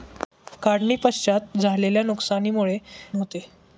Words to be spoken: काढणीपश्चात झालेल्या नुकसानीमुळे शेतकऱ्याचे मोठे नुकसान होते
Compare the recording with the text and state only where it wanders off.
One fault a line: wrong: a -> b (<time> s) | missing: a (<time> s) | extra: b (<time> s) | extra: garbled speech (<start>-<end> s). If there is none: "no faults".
missing: शेतकऱ्याचे मोठे नुकसान (2.8 s)